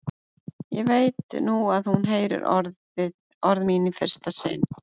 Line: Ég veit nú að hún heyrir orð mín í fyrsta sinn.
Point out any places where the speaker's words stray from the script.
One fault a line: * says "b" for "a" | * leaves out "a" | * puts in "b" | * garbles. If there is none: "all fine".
all fine